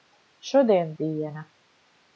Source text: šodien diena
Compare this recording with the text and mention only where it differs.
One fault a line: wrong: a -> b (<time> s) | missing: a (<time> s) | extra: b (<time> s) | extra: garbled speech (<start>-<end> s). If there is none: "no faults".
no faults